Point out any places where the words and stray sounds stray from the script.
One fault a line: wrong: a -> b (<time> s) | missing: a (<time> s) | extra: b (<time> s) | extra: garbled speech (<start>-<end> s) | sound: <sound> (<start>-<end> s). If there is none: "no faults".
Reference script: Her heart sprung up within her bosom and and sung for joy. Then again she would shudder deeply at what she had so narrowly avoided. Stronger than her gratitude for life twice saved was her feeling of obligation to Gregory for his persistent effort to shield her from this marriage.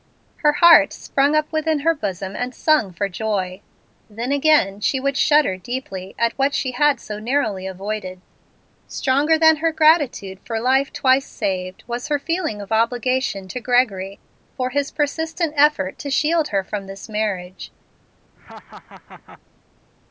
missing: and (2.5 s)
sound: laugh (18.4-19.4 s)